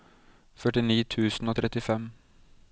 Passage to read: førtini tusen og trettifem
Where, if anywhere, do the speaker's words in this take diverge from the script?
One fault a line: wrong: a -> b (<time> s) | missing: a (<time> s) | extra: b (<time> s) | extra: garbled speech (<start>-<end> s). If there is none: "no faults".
no faults